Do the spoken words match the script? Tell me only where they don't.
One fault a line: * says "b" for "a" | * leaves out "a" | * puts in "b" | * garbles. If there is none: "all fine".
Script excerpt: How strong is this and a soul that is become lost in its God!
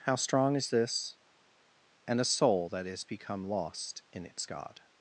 all fine